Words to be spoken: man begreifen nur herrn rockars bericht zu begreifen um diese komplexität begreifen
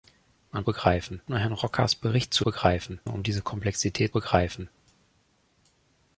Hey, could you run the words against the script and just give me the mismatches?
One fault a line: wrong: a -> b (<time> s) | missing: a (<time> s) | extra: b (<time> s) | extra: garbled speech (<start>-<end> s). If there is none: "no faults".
no faults